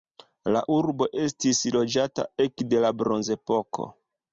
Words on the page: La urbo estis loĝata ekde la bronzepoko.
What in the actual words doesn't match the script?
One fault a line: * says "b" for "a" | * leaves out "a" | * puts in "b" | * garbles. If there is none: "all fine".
all fine